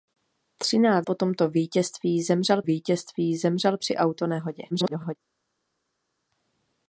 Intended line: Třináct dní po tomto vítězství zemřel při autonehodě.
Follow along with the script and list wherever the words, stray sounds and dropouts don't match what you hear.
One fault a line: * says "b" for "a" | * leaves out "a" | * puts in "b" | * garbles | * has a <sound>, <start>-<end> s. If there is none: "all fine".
* leaves out "dní"
* puts in "vítězství zemřel"
* garbles